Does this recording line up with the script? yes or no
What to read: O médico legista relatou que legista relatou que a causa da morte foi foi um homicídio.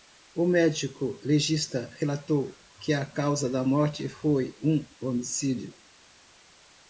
no